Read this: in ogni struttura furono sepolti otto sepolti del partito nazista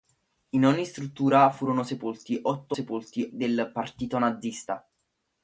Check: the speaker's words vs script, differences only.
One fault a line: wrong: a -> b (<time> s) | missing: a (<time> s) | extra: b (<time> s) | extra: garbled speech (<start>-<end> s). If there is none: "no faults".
no faults